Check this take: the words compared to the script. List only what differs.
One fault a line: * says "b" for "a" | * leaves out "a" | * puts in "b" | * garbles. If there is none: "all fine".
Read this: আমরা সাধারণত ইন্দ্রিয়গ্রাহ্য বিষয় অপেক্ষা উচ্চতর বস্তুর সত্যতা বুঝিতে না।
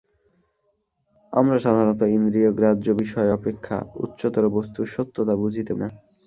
all fine